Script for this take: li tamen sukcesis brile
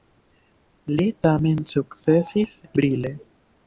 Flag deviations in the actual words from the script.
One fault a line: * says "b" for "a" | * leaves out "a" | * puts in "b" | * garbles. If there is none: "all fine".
all fine